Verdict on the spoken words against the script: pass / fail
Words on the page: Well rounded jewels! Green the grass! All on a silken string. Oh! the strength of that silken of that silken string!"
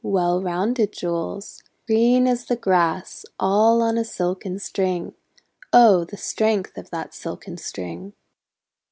fail